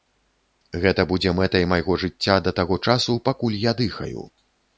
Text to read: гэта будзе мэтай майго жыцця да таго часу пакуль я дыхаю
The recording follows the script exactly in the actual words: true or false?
true